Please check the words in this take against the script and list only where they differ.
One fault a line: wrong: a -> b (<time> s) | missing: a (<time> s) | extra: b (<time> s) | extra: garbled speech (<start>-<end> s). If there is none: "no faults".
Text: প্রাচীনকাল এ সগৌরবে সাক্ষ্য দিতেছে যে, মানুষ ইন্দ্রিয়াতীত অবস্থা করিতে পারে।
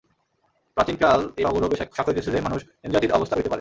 no faults